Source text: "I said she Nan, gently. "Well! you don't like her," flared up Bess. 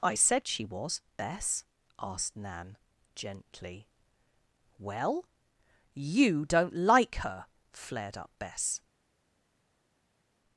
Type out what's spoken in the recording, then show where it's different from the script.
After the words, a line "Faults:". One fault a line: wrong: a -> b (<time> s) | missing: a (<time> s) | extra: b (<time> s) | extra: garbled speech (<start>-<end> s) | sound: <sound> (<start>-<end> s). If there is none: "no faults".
"I said she was, Bess?" asked Nan, gently. "Well! you don't like her," flared up Bess.
Faults:
extra: was Bess asked (0.6 s)